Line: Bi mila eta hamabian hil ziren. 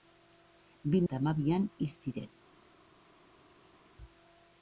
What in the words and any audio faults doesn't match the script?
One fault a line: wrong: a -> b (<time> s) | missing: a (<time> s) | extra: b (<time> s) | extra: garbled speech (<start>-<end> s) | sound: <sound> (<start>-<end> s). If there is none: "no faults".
missing: mila (1.0 s)